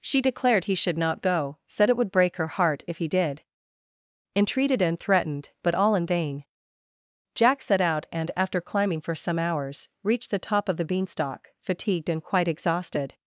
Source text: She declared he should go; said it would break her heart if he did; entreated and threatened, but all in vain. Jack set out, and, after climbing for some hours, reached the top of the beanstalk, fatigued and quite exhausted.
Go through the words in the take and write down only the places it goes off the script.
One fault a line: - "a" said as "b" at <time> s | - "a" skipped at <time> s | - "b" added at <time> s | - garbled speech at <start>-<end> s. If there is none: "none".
- "not" added at 1.0 s